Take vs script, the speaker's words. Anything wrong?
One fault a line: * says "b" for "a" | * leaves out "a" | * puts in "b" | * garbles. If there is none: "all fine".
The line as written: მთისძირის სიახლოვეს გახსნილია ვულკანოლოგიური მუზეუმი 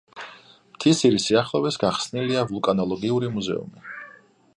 all fine